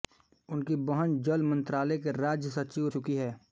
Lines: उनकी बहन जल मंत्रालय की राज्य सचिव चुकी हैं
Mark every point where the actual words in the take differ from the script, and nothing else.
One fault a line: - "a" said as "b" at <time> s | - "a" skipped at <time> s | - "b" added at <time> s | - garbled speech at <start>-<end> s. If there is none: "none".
none